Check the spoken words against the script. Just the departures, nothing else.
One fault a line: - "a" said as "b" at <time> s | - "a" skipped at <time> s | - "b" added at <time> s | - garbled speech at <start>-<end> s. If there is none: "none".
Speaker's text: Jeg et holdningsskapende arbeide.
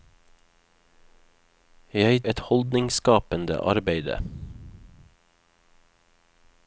none